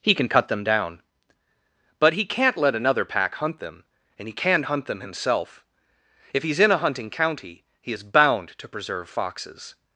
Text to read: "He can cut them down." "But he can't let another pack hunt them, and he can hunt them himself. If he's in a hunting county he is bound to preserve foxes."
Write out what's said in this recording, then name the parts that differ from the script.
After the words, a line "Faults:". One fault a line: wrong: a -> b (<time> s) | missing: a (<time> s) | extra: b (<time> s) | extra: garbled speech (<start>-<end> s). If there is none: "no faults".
"He can cut them down." "But he can't let another pack hunt them, and he can hunt them himself. If he's in a hunting county he is bound to preserve foxes."
Faults:
no faults